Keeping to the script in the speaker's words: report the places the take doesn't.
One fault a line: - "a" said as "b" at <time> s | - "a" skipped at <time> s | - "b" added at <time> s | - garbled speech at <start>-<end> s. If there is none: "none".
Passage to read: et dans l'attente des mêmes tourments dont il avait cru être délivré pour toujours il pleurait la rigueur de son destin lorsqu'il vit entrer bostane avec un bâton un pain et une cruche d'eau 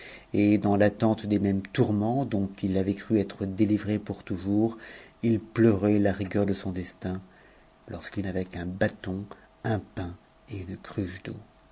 - "vit entrer bostane" skipped at 8.2 s